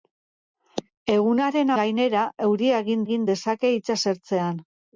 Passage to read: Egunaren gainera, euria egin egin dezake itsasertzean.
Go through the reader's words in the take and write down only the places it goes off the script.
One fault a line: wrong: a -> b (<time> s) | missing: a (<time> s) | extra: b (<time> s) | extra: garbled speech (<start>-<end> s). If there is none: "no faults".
no faults